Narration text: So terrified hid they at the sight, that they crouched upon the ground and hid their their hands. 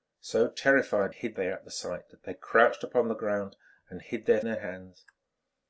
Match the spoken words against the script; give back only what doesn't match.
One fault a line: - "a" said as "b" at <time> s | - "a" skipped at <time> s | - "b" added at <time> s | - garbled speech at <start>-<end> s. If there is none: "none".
none